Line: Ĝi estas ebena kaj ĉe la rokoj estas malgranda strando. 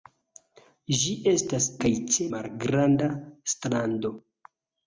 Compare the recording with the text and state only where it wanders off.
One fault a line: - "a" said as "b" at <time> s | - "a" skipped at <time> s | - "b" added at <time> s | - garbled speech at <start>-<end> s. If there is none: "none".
- "ebena" skipped at 1.7 s
- "la rokoj estas" skipped at 2.3 s